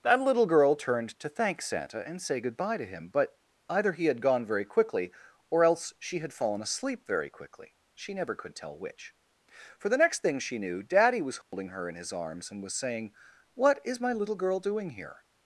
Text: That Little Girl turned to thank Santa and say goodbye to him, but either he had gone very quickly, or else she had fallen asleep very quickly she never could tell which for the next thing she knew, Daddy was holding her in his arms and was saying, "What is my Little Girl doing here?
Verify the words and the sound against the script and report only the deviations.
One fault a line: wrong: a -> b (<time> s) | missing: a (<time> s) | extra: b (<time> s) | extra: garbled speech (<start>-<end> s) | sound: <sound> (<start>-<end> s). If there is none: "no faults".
sound: dropout (11.4-11.5 s)